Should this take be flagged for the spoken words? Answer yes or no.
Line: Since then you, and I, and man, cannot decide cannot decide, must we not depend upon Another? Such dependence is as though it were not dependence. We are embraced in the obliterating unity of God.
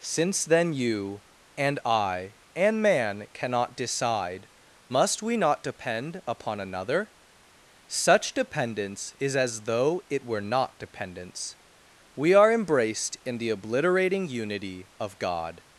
yes